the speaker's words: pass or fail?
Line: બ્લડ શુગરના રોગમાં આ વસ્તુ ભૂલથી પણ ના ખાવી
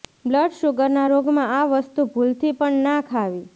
pass